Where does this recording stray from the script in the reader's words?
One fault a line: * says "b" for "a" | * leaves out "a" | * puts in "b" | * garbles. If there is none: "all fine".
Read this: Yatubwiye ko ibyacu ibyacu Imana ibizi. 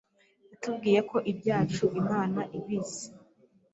* leaves out "ibyacu"